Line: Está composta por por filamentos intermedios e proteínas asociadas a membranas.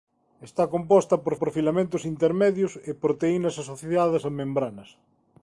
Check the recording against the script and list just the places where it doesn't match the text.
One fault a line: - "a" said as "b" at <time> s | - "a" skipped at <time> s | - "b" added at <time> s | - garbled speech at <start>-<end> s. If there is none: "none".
none